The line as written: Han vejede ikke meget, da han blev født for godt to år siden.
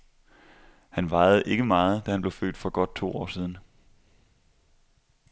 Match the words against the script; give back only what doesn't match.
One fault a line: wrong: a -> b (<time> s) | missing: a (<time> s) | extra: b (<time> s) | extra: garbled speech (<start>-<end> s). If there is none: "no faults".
no faults